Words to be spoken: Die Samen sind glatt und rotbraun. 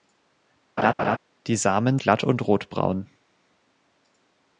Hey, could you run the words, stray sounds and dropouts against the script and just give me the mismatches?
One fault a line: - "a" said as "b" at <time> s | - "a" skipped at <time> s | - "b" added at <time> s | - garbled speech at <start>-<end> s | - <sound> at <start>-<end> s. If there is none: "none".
- laugh at 0.8-1.2 s
- "sind" skipped at 2.0 s